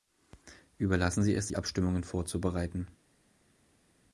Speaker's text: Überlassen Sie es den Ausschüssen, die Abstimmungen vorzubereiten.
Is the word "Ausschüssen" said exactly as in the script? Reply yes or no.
no